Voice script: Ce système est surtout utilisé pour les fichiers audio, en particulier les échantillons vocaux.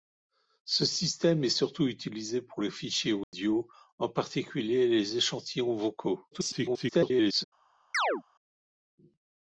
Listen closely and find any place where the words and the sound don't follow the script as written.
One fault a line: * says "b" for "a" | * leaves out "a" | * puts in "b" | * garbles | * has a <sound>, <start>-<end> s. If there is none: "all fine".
* has a dropout, 3.2-3.3 s
* garbles
* has a chirp, 7.9-8.2 s